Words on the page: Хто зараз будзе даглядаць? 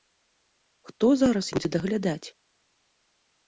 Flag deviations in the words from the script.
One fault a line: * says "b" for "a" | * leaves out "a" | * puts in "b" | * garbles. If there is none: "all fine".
all fine